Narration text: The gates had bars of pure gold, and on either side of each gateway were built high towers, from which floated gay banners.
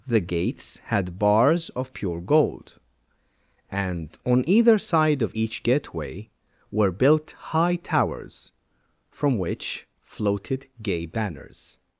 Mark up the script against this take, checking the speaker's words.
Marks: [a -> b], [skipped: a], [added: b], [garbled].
The gates had bars of pure gold, and on either side of each gateway were built high towers, from which floated gay banners.